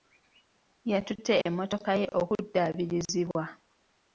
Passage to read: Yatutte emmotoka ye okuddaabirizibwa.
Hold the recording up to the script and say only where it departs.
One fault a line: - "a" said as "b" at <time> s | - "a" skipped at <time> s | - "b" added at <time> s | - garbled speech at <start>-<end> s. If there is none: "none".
none